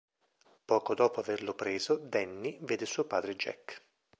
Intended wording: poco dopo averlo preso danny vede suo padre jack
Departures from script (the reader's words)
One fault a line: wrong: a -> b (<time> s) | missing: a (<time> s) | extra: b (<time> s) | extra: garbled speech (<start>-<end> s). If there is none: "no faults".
no faults